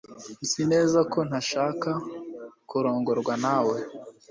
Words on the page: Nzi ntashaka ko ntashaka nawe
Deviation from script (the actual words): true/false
true